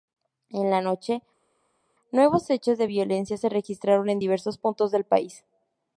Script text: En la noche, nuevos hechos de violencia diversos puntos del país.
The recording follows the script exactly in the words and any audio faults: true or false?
false